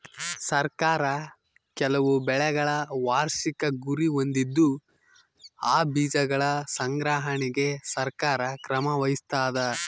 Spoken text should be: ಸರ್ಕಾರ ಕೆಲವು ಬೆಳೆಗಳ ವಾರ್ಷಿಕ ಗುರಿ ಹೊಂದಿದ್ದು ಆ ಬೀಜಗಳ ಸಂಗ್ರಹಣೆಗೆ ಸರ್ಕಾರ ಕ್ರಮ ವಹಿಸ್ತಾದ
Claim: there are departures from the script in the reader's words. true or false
false